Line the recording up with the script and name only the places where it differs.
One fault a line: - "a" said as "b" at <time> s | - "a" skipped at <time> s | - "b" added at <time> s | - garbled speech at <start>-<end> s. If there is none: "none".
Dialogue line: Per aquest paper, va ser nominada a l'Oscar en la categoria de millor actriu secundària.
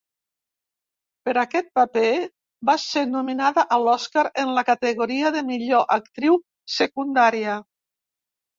none